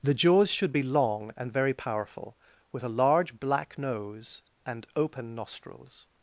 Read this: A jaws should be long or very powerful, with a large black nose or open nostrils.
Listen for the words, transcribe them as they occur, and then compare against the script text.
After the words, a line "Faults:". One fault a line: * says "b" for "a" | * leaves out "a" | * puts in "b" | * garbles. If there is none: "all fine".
The jaws should be long and very powerful, with a large black nose and open nostrils.
Faults:
* says "The" for "A"
* says "and" for "or"
* says "and" for "or"